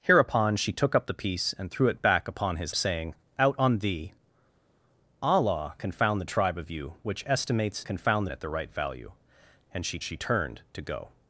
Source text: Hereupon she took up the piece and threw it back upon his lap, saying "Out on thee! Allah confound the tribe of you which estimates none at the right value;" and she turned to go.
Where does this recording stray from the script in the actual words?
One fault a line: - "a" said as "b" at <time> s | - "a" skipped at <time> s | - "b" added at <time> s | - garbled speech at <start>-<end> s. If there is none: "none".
- "lap" skipped at 2.7 s
- "none" said as "confound" at 7.8 s
- "she" added at 10.0 s